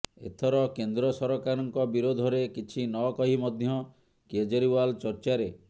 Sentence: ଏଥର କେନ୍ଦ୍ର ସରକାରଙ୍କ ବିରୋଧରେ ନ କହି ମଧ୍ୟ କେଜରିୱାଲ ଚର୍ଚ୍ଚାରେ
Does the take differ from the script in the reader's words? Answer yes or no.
yes